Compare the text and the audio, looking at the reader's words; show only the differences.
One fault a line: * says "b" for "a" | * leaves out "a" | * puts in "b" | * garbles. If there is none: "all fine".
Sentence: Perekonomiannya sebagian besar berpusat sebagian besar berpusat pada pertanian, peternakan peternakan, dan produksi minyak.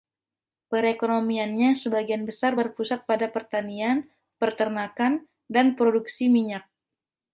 * leaves out "sebagian besar berpusat"
* leaves out "peternakan"